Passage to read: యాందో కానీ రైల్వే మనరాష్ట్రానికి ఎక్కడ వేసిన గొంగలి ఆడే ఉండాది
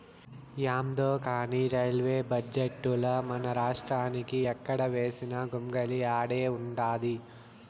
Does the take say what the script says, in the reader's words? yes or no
no